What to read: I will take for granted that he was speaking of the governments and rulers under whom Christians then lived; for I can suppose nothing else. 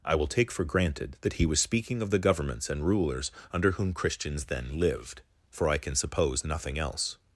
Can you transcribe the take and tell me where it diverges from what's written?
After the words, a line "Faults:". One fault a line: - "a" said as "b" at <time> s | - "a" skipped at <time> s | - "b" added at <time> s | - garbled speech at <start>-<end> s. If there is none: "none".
I will take for granted that he was speaking of the governments and rulers under whom Christians then lived; for I can suppose nothing else.
Faults:
none